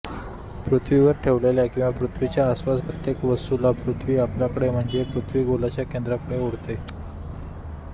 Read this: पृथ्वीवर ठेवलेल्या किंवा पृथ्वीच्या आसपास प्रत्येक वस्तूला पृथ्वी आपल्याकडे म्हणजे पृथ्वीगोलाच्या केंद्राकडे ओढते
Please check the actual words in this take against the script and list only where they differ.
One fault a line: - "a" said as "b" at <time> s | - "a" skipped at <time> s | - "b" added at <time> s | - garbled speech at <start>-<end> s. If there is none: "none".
none